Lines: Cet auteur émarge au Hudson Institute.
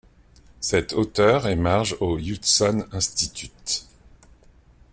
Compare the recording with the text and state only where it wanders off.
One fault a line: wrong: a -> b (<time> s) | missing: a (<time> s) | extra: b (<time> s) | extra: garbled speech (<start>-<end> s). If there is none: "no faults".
no faults